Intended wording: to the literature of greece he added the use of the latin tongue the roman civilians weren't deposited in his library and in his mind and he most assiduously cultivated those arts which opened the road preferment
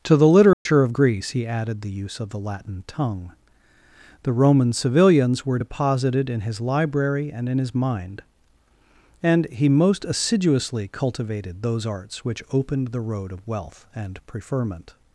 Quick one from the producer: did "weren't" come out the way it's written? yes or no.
no